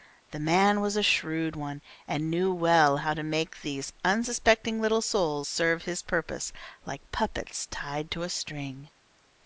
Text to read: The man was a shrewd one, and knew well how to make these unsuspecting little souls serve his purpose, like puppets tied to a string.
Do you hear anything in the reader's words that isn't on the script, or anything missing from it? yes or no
no